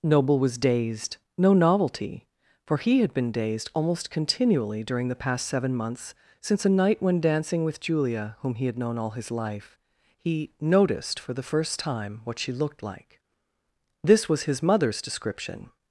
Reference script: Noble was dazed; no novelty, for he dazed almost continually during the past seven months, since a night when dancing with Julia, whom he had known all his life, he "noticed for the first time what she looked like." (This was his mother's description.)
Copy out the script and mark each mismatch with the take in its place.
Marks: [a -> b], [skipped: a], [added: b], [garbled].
Noble was dazed; no novelty, for he [added: had been] dazed almost continually during the past seven months, since a night when dancing with Julia, whom he had known all his life, he "noticed for the first time what she looked like." (This was his mother's description.)